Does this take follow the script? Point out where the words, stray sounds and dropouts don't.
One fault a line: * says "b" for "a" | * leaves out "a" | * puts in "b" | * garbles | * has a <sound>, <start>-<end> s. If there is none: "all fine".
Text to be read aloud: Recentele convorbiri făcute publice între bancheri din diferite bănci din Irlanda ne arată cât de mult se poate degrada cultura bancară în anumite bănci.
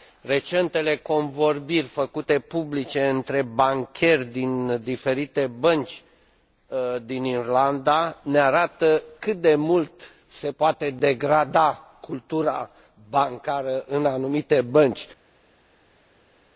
all fine